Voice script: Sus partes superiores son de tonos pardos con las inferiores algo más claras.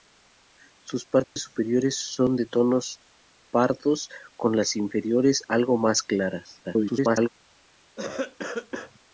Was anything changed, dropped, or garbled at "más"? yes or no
no